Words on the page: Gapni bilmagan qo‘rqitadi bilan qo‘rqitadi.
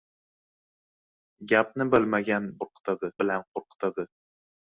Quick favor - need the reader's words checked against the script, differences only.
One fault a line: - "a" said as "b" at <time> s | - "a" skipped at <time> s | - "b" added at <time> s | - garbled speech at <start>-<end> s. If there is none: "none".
none